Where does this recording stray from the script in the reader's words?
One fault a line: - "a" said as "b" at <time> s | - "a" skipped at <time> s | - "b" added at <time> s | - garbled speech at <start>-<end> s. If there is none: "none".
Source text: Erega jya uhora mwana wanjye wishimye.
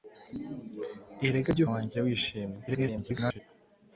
- "uhora mwana" skipped at 1.6 s
- garbled speech at 2.7-3.4 s